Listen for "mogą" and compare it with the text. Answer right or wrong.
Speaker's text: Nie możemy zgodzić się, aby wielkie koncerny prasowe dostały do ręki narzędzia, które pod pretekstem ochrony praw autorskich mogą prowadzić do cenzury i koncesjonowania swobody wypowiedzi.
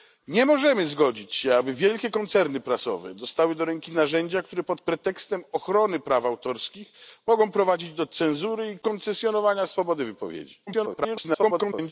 right